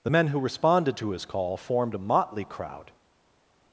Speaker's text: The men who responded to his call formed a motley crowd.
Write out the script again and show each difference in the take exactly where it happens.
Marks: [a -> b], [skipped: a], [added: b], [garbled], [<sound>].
The men who responded to his call formed a motley crowd.